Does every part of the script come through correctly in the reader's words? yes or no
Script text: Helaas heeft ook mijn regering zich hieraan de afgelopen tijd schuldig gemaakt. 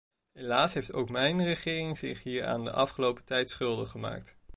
yes